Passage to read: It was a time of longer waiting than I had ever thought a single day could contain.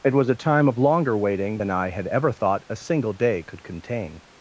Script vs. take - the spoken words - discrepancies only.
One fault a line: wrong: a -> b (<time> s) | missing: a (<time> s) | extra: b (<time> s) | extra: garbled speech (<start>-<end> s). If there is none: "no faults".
no faults